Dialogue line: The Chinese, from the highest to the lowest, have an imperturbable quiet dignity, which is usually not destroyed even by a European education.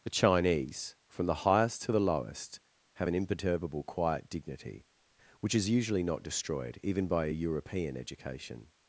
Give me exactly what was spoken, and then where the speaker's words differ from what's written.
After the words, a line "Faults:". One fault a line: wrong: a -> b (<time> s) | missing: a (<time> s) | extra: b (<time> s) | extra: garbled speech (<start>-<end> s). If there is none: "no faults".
The Chinese, from the highest to the lowest, have an imperturbable quiet dignity, which is usually not destroyed even by a European education.
Faults:
no faults